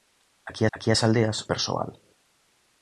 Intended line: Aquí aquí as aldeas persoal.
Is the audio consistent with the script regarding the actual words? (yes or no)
yes